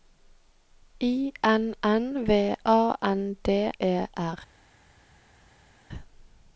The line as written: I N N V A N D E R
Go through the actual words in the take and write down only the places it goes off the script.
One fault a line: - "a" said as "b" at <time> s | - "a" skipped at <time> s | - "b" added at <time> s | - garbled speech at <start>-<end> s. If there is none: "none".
none